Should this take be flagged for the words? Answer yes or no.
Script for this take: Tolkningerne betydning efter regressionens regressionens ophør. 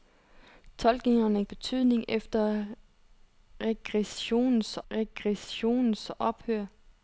no